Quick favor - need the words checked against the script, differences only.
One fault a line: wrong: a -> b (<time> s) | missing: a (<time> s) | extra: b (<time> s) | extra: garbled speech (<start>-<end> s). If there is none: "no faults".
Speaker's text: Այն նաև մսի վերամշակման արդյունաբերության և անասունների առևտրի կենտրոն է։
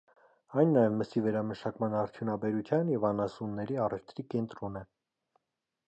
no faults